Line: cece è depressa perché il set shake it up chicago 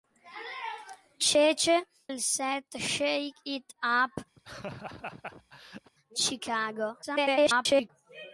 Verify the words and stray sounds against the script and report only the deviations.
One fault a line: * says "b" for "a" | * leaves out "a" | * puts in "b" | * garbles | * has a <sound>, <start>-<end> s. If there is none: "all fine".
* leaves out "è depressa perché"
* has a laugh, 4.4-5.9 s
* garbles